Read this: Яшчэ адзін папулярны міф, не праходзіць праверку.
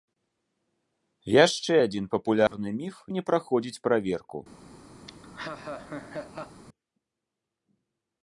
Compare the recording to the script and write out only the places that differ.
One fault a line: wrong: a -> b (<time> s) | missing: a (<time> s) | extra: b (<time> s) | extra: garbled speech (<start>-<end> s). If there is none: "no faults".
no faults